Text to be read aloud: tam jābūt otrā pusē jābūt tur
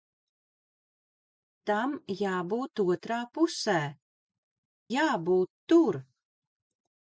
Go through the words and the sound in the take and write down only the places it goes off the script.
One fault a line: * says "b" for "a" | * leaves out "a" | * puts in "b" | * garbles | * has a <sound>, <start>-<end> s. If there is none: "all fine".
all fine